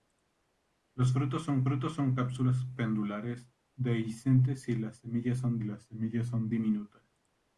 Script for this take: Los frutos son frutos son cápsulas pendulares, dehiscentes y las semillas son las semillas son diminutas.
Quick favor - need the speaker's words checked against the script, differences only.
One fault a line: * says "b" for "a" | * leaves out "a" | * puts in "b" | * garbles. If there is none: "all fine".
all fine